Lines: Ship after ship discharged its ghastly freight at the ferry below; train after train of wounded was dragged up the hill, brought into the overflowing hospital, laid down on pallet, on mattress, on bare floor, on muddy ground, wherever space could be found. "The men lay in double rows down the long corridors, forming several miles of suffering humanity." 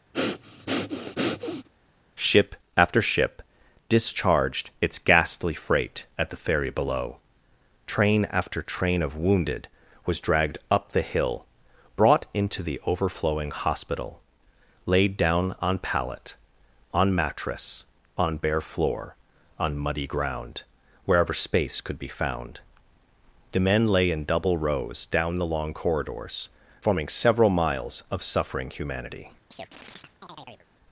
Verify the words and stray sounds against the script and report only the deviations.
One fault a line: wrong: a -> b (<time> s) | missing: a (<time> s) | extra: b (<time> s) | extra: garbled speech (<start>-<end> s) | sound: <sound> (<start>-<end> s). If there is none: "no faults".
sound: breath (0.1-1.7 s)
sound: chirp (29.5-30.7 s)